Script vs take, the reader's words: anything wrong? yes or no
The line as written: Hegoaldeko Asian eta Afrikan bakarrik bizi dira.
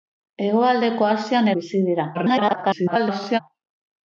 yes